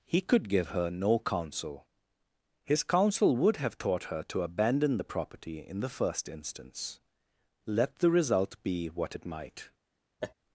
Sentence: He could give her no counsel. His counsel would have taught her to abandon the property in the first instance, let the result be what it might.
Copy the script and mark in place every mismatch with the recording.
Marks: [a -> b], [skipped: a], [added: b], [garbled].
He could give her no counsel. His counsel would have taught her to abandon the property in the first instance, let the result be what it might.